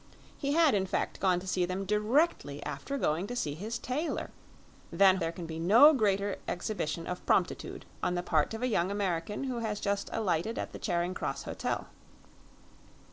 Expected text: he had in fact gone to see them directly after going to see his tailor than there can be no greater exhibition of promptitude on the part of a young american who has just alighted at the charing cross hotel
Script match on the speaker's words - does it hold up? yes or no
yes